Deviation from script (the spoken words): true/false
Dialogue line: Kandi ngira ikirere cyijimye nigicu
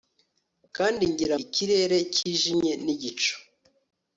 false